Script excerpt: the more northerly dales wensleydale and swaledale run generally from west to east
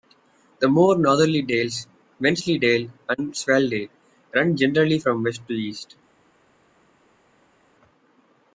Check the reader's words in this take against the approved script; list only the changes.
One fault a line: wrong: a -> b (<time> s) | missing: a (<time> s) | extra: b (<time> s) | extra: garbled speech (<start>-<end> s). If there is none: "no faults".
no faults